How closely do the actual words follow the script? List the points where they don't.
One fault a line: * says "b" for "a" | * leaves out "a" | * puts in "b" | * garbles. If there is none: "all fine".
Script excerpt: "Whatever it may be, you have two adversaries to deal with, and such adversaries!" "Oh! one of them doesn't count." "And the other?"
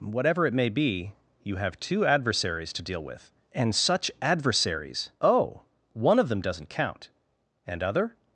* leaves out "the"